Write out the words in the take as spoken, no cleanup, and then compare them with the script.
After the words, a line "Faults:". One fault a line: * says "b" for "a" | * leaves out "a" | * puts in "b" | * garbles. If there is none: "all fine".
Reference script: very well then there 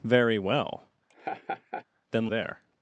very well then there
Faults:
all fine